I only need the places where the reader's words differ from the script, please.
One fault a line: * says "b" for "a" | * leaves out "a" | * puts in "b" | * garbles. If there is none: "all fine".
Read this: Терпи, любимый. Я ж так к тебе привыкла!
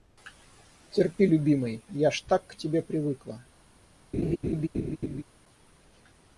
all fine